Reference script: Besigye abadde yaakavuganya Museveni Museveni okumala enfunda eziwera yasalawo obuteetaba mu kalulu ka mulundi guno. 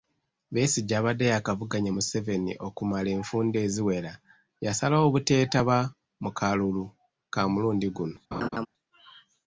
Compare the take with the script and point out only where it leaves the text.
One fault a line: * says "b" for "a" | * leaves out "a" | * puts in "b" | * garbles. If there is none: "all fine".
* leaves out "Museveni"